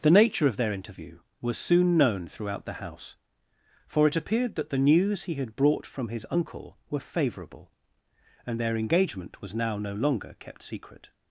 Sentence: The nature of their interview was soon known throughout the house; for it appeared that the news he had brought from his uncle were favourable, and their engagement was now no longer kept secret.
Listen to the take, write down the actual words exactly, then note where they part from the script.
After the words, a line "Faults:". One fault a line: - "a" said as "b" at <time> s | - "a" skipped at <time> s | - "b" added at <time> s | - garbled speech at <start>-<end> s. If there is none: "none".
The nature of their interview was soon known throughout the house; for it appeared that the news he had brought from his uncle were favourable, and their engagement was now no longer kept secret.
Faults:
none